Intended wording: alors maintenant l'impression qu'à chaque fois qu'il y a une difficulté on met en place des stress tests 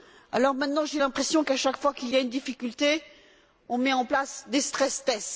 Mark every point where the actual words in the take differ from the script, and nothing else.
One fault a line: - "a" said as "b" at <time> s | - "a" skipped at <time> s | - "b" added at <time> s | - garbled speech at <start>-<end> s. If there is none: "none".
- "j'ai" added at 0.8 s